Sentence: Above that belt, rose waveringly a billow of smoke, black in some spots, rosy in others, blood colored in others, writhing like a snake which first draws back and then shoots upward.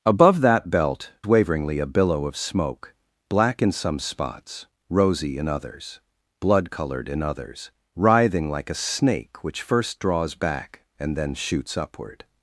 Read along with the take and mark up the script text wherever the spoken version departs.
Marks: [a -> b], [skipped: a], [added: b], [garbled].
Above that belt, [skipped: rose] waveringly a billow of smoke, black in some spots, rosy in others, blood colored in others, writhing like a snake which first draws back and then shoots upward.